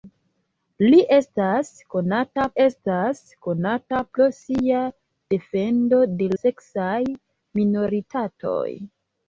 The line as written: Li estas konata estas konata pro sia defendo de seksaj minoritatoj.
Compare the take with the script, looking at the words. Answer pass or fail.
pass